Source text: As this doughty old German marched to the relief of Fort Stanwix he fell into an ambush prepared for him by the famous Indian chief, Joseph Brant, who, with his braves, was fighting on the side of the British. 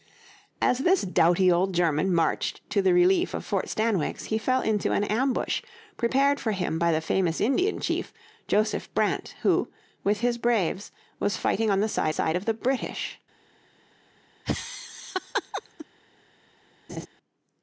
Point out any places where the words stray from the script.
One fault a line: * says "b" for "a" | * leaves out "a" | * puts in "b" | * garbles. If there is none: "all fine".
* puts in "side"